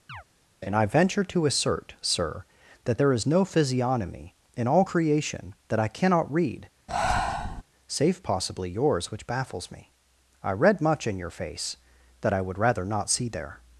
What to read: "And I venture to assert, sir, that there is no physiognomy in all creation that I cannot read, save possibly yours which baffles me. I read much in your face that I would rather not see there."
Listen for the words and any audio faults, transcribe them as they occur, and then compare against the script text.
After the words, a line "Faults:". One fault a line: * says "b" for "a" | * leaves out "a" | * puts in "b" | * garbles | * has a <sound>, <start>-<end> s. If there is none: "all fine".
"And I venture to assert, sir, that there is no physiognomy in all creation that I cannot read, save possibly yours which baffles me. I read much in your face that I would rather not see there."
Faults:
* has a chirp, 0.1-0.2 s
* has a breath, 6.9-7.6 s